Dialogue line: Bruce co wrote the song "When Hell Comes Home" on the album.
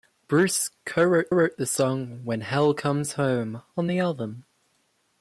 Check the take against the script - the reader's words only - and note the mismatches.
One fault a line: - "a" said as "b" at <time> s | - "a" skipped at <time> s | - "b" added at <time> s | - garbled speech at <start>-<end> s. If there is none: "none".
- "wrote" added at 1.3 s